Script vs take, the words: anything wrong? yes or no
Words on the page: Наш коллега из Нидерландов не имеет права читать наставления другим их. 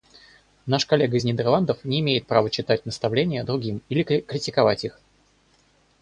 yes